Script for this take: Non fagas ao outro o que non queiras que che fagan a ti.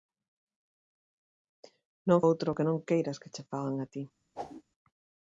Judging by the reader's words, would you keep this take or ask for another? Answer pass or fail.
fail